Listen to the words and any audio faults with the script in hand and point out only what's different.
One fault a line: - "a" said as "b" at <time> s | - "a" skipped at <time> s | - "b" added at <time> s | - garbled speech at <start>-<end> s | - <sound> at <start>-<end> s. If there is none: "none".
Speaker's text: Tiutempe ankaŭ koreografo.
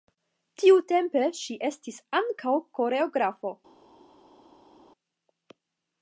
- "ŝi estis" added at 1.4 s